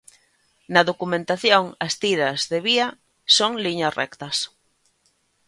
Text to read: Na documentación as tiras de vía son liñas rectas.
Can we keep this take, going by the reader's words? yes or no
yes